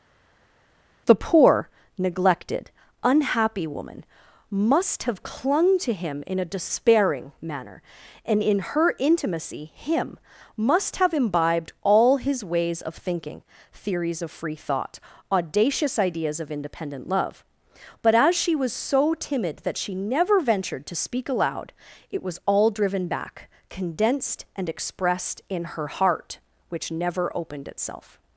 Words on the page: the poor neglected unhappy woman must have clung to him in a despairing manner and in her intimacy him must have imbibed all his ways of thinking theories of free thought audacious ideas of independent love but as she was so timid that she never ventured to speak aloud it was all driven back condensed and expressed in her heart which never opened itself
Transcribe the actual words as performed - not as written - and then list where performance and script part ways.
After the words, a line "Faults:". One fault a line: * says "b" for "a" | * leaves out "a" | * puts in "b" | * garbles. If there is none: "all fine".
the poor neglected unhappy woman must have clung to him in a despairing manner and in her intimacy him must have imbibed all his ways of thinking theories of free thought audacious ideas of independent love but as she was so timid that she never ventured to speak aloud it was all driven back condensed and expressed in her heart which never opened itself
Faults:
all fine